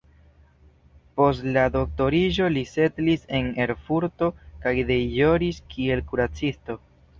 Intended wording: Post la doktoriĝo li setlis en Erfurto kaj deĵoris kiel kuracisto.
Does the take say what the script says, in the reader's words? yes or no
yes